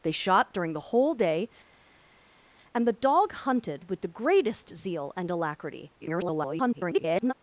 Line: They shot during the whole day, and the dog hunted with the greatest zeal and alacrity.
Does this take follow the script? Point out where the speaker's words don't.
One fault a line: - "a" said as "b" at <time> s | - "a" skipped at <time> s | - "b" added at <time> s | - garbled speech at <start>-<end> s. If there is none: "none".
- garbled speech at 6.0-7.3 s